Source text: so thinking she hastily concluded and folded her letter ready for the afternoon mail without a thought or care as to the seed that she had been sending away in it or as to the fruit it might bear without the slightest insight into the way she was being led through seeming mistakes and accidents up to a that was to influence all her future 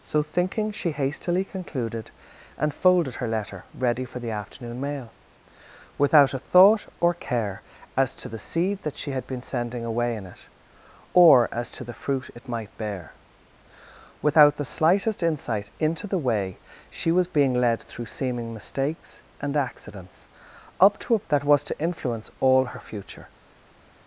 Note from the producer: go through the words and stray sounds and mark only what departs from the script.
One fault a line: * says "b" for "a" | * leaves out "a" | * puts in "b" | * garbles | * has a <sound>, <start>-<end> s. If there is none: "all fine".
all fine